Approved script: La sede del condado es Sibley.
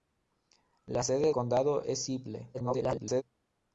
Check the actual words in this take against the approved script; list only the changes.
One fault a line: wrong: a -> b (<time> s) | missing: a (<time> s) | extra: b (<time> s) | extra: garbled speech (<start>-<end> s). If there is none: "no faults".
missing: del (1.3 s)
extra: garbled speech (2.5-3.2 s)